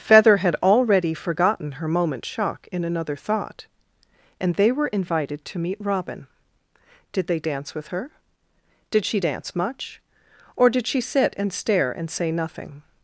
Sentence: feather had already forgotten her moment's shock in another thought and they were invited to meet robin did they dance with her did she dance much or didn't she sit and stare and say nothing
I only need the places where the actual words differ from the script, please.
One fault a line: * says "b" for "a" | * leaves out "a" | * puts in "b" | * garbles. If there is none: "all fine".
* says "did" for "didn't"